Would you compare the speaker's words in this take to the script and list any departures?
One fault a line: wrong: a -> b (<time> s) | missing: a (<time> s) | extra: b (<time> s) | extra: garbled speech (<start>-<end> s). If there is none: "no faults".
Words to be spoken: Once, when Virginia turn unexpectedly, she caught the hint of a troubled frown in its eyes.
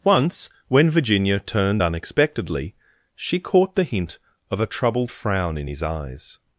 wrong: turn -> turned (1.4 s)
wrong: its -> his (5.7 s)